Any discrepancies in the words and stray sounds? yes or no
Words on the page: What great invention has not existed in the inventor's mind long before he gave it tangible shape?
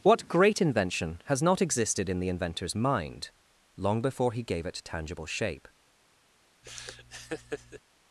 yes